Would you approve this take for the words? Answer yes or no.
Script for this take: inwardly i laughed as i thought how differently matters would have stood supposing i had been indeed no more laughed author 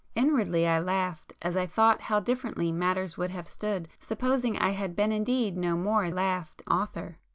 yes